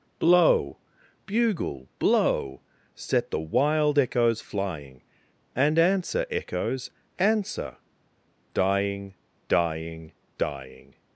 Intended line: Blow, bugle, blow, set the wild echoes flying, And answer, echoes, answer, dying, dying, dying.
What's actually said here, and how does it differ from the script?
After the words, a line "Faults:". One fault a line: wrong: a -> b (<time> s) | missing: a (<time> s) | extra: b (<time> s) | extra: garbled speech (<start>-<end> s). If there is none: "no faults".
Blow, bugle, blow, set the wild echoes flying, And answer, echoes, answer, dying, dying, dying.
Faults:
no faults